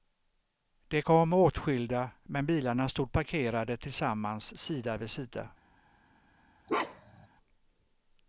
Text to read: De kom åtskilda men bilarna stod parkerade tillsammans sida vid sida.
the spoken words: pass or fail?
pass